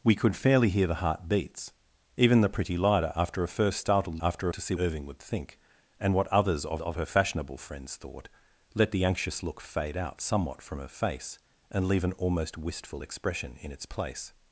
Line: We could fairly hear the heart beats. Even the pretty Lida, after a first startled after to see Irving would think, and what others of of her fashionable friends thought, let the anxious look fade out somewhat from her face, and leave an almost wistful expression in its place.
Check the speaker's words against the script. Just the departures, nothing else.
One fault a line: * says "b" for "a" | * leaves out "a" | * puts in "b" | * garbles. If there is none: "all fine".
all fine